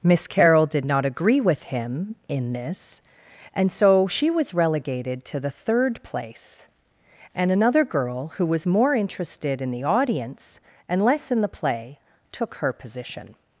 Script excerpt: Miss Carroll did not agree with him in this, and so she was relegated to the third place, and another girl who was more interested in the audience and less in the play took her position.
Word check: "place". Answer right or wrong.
right